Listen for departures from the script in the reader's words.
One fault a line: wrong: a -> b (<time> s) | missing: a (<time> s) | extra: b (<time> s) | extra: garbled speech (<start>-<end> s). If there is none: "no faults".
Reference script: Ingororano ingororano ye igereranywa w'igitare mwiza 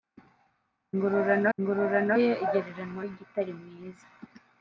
no faults